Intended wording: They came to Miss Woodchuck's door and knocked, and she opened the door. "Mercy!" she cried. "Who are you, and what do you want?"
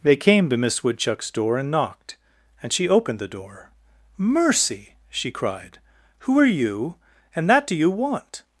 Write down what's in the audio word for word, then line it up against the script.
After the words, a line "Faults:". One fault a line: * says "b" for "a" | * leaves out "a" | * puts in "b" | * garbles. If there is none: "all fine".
They came to Miss Woodchuck's door and knocked, and she opened the door. "Mercy!" she cried. "Who are you, and that do you want?"
Faults:
* says "that" for "what"